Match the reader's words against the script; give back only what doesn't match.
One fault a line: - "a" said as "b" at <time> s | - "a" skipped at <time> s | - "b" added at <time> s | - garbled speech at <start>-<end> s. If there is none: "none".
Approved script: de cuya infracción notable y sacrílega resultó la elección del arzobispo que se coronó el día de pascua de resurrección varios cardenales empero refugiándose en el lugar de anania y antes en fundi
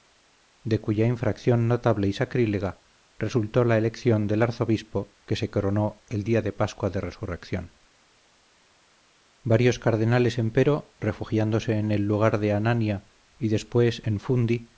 - "antes" said as "después" at 13.5 s